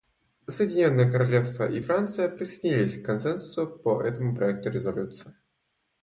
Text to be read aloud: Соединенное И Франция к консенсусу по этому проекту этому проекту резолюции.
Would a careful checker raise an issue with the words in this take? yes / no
yes